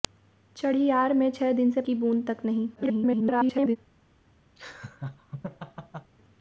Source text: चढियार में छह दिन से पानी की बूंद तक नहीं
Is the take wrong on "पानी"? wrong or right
wrong